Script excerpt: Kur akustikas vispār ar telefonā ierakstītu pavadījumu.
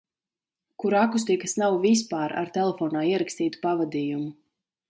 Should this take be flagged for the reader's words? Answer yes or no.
yes